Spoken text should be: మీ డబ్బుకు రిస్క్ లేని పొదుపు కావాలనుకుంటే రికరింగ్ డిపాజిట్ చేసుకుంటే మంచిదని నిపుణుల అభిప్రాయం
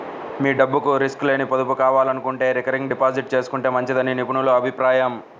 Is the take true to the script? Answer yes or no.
yes